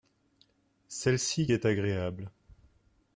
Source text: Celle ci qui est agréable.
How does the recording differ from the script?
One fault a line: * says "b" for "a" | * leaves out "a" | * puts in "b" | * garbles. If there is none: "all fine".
* leaves out "qui"